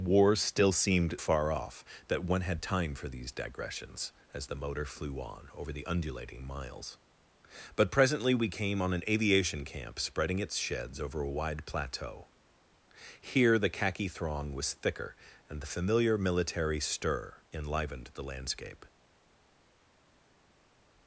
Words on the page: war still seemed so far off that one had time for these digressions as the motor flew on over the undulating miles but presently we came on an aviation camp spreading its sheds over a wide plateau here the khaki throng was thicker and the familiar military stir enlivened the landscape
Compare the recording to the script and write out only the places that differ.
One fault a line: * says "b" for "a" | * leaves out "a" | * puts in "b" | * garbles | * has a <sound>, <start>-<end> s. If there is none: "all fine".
* leaves out "so"